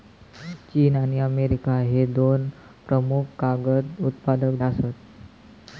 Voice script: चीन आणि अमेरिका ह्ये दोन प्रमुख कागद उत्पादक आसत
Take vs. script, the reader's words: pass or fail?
pass